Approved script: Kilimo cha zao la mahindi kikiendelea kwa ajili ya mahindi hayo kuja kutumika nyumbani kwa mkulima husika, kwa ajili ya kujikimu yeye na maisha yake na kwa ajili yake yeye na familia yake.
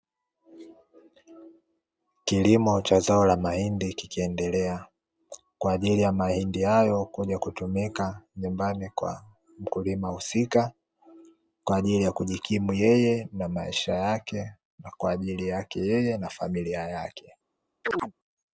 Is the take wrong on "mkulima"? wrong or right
right